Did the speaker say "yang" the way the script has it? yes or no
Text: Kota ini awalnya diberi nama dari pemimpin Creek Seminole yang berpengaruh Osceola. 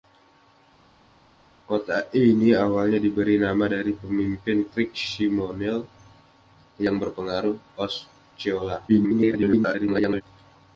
yes